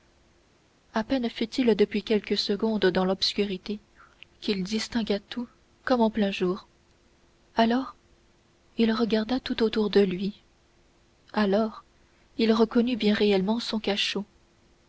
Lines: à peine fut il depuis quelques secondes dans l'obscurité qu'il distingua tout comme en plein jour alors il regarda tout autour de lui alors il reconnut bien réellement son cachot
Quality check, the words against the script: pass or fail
pass